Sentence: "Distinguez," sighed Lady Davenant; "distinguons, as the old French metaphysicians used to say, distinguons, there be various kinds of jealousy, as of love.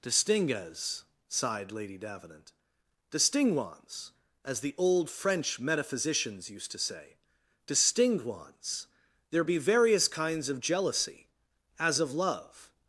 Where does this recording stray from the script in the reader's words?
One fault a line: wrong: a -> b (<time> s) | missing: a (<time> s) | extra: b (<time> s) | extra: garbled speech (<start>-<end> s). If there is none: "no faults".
no faults